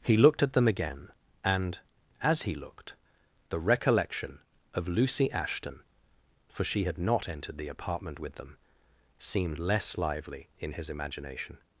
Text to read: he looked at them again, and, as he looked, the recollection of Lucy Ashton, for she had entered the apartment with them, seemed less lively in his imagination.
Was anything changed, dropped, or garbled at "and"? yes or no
no